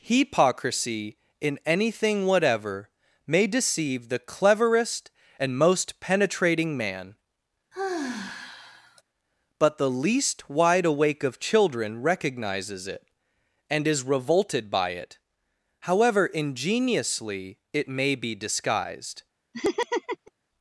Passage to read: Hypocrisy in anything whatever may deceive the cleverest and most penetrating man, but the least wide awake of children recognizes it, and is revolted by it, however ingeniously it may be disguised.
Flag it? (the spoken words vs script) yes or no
no